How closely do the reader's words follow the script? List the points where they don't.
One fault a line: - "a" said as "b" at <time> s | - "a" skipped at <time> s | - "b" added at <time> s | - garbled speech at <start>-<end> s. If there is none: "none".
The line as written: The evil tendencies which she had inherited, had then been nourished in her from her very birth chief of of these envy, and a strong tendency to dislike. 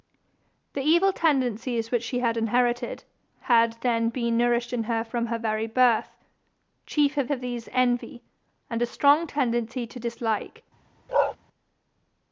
none